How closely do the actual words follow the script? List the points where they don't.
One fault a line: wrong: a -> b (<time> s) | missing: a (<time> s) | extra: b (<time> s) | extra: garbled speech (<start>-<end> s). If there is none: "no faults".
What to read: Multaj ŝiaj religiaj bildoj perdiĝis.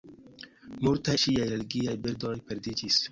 no faults